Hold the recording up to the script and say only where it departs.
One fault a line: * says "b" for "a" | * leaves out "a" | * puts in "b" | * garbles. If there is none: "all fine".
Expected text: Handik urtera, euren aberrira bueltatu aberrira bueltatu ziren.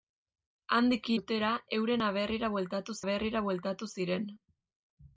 all fine